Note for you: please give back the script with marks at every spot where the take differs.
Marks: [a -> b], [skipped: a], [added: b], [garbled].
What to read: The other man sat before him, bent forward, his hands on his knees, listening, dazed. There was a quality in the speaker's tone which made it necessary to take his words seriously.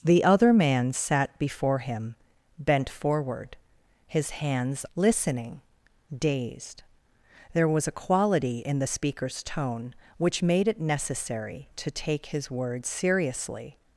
The other man sat before him, bent forward, his hands [skipped: on his knees,] listening, dazed. There was a quality in the speaker's tone which made it necessary to take his words seriously.